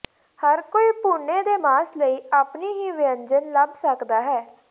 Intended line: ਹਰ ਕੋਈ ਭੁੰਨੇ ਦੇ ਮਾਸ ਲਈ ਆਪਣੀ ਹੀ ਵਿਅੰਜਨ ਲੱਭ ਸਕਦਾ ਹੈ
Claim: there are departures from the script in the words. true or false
false